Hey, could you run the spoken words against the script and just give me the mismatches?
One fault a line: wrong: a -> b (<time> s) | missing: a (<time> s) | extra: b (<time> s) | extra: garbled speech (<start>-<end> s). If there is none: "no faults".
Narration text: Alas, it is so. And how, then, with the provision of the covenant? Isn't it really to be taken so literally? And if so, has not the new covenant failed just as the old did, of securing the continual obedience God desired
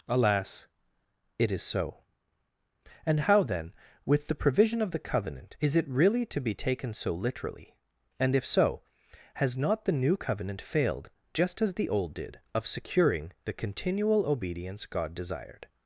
wrong: Isn't -> Is (5.6 s)